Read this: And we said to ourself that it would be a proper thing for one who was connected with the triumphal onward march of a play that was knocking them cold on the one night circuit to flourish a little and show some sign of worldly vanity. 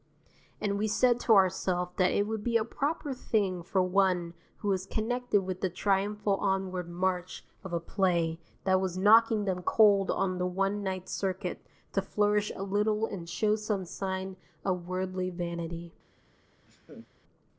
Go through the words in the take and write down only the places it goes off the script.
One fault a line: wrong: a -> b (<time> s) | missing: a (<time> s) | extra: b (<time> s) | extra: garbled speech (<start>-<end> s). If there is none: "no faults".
no faults